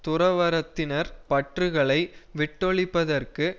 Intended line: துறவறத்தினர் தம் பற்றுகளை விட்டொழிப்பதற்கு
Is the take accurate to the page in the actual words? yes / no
no